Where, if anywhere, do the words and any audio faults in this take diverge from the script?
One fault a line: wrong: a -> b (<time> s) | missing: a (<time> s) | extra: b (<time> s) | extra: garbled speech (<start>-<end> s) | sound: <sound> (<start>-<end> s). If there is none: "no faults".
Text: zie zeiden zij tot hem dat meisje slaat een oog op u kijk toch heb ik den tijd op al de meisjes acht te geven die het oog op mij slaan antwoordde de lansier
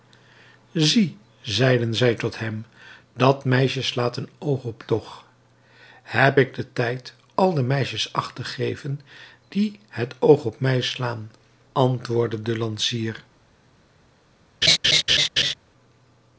missing: u kijk (4.8 s)
missing: op (7.1 s)
sound: laugh (14.6-15.5 s)